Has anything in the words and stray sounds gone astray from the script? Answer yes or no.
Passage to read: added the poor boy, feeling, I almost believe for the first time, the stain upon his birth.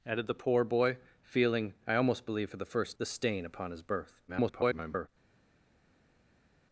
yes